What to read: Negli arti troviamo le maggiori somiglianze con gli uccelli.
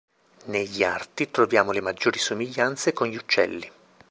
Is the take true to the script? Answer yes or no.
yes